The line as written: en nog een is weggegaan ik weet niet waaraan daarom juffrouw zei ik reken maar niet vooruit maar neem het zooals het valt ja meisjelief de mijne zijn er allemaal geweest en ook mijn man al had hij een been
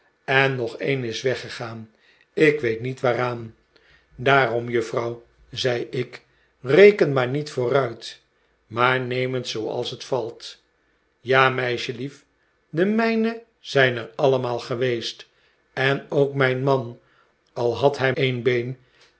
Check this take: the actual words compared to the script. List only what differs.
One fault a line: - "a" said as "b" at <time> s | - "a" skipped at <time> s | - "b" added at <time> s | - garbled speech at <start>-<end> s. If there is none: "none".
none